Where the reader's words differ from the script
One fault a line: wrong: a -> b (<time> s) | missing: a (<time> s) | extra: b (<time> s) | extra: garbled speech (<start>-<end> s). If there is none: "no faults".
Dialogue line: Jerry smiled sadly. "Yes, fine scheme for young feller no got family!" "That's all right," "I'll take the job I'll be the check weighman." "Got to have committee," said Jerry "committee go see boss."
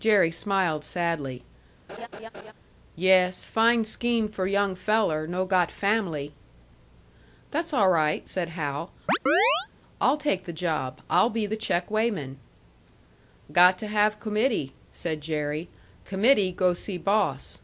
extra: said Hal (8.3 s)